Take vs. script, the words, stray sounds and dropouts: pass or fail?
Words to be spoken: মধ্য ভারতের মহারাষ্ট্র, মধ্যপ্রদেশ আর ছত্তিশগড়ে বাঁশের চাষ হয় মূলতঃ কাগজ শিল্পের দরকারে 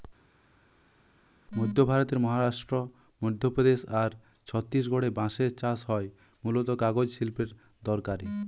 pass